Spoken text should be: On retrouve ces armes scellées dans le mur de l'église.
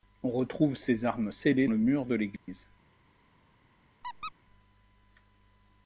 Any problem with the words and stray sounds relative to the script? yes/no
yes